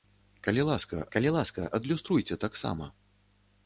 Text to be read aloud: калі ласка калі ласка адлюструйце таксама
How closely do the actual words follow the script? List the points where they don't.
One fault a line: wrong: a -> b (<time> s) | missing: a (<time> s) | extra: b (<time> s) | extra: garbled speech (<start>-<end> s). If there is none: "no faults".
no faults